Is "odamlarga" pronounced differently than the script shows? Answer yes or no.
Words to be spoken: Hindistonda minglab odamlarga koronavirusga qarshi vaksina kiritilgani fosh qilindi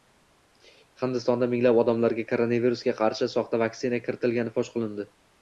no